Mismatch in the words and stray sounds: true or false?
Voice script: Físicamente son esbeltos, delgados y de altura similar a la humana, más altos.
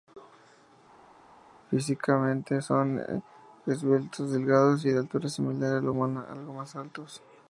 true